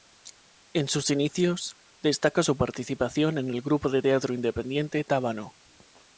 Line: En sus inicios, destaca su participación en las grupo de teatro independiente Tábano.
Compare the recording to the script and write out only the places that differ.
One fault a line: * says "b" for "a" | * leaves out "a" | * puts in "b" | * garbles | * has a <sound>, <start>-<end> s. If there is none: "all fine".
* says "el" for "las"